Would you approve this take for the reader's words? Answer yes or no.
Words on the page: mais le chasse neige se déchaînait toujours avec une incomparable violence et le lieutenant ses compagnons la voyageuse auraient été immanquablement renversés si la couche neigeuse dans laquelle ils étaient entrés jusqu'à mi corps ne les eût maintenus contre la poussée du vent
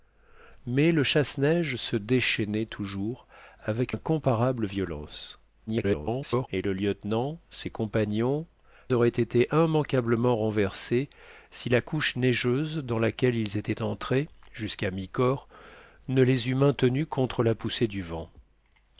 no